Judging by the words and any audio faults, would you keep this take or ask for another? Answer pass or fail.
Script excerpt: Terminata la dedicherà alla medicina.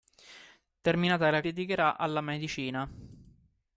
pass